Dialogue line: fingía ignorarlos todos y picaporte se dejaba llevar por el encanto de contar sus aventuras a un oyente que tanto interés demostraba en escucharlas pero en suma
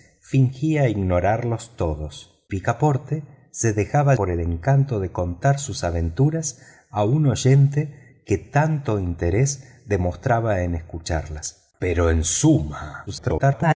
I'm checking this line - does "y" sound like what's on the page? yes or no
no